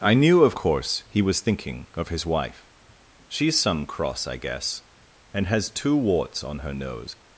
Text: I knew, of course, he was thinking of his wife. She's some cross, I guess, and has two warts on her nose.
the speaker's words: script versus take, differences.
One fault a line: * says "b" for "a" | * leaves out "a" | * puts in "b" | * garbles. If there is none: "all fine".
all fine